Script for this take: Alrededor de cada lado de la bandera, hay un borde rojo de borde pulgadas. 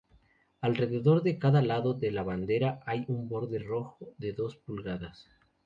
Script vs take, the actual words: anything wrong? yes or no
yes